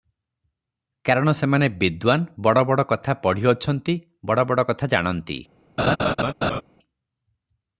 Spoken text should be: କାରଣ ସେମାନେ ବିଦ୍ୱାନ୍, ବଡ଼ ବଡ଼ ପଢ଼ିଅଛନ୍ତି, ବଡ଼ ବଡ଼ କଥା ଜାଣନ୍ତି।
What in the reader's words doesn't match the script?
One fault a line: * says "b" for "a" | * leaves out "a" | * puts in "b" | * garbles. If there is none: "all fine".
* puts in "କଥା"